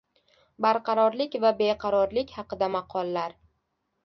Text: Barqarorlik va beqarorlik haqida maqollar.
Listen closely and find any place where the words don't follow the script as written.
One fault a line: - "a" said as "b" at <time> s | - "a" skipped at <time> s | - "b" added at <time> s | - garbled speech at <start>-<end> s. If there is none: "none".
none